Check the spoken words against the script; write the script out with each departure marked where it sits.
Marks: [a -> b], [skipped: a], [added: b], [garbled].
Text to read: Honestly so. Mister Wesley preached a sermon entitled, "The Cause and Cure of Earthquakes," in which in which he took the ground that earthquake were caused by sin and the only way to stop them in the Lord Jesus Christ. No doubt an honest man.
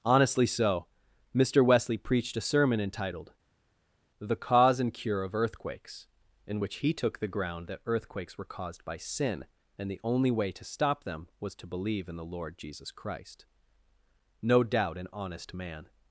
Honestly so. Mister Wesley preached a sermon entitled, "The Cause and Cure of Earthquakes," in which [skipped: in which] he took the ground that [earthquake -> earthquakes] were caused by sin and the only way to stop them [added: was to believe] in the Lord Jesus Christ. No doubt an honest man.